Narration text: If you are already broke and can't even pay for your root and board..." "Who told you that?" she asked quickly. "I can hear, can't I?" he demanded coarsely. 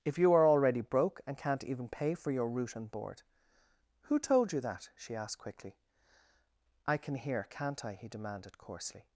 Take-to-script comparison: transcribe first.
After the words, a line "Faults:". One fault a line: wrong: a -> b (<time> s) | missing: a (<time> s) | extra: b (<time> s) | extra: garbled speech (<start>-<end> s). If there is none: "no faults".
If you are already broke and can't even pay for your root and board..." "Who told you that?" she asked quickly. "I can hear, can't I?" he demanded coarsely.
Faults:
no faults